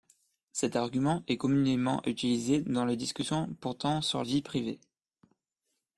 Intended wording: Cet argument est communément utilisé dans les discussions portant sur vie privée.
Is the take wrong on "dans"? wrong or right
right